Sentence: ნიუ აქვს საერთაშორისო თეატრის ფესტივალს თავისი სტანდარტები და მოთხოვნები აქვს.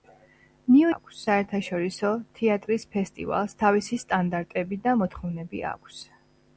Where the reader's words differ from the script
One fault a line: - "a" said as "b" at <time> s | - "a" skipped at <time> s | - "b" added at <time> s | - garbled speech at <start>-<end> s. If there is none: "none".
none